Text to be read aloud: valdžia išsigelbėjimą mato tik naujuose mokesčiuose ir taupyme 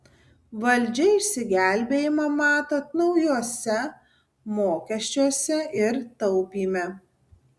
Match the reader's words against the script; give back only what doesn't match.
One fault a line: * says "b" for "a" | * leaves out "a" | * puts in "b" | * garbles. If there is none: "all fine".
* leaves out "tik"